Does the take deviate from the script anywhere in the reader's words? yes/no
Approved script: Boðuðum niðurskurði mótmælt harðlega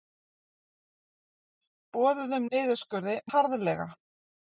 yes